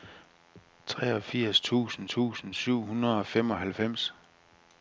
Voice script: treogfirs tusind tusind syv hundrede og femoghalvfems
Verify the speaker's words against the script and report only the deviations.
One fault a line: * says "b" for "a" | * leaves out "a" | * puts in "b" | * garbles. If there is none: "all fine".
all fine